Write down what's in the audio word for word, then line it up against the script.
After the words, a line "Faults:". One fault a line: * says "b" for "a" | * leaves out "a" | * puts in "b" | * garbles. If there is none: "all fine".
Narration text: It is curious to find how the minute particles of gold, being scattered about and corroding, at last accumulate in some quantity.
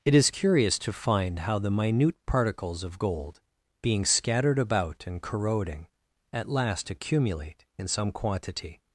It is curious to find how the minute particles of gold, being scattered about and corroding, at last accumulate in some quantity.
Faults:
all fine